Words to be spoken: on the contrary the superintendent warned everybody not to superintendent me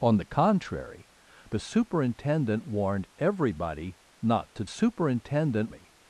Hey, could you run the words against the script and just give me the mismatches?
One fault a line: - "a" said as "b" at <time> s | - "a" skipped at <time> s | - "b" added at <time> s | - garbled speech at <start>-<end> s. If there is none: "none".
none